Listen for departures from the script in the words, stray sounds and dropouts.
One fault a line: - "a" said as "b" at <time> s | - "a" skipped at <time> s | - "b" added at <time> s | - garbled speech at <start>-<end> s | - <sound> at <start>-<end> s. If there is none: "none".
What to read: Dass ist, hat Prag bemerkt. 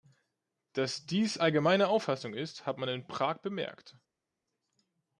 - "dies allgemeine Auffassung" added at 1.1 s
- "man in" added at 2.8 s